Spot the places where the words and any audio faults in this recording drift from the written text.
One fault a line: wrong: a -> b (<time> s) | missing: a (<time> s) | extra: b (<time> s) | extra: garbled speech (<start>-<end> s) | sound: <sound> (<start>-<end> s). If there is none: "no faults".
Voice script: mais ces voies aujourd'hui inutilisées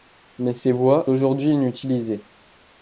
no faults